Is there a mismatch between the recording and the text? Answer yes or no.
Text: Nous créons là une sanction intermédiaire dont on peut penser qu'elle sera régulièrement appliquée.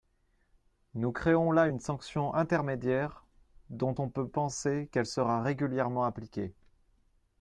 no